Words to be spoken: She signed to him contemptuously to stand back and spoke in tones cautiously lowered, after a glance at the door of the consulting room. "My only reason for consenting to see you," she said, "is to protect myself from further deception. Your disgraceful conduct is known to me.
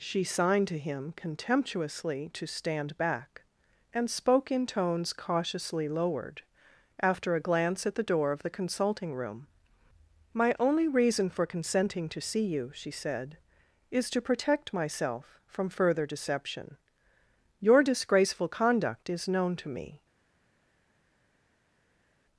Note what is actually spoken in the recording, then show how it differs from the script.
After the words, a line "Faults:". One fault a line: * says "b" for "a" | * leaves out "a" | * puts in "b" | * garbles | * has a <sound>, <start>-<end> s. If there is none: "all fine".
She signed to him contemptuously to stand back and spoke in tones cautiously lowered, after a glance at the door of the consulting room. "My only reason for consenting to see you," she said, "is to protect myself from further deception. Your disgraceful conduct is known to me.
Faults:
all fine